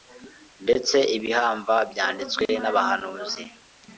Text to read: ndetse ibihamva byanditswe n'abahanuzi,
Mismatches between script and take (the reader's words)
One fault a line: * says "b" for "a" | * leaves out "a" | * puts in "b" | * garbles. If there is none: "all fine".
all fine